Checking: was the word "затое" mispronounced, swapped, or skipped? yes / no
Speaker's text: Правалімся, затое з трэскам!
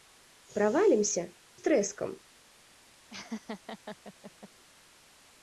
yes